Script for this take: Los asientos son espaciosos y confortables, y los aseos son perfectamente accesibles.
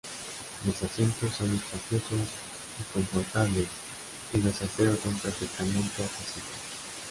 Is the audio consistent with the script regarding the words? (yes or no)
yes